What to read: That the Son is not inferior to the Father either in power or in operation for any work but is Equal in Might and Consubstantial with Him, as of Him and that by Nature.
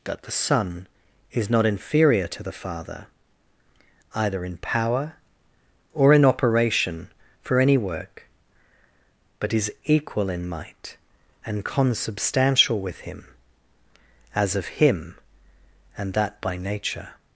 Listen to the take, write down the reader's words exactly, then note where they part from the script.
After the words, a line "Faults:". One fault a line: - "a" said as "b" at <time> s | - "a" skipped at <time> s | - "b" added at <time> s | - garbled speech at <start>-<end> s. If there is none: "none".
That the Son is not inferior to the Father either in power or in operation for any work but is Equal in Might and Consubstantial with Him, as of Him and that by Nature.
Faults:
none